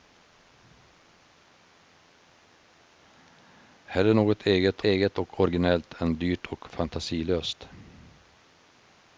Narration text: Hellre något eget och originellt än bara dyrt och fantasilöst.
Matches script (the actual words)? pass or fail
fail